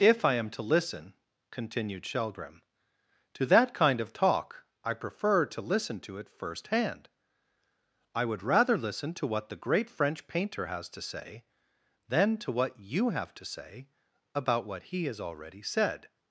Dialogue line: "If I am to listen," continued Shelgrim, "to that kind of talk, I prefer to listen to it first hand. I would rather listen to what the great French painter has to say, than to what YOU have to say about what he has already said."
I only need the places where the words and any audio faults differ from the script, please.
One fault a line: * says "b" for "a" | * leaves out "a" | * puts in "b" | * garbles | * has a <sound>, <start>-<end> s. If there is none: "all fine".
all fine